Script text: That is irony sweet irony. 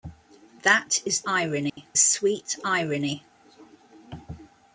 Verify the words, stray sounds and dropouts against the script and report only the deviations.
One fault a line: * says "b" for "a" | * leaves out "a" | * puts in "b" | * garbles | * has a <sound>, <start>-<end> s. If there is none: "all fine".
* has a dropout, 1.7-1.8 s